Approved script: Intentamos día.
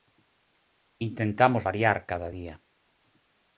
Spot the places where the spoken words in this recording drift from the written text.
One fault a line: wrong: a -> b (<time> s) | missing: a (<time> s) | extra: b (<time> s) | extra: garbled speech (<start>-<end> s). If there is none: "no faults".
extra: variar cada (1.6 s)